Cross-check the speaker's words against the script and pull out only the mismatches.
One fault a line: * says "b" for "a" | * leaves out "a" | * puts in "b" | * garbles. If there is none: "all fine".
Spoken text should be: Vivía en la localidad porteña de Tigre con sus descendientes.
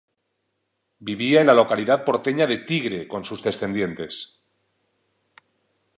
all fine